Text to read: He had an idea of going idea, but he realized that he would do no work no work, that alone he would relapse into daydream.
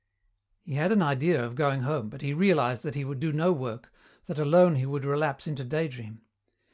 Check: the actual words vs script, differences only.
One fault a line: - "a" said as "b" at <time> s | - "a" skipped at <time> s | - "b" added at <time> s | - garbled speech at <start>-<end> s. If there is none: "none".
- "idea" said as "home" at 1.8 s
- "no work" skipped at 3.9 s